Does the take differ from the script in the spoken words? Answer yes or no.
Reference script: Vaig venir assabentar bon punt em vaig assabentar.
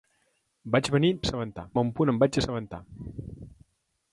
no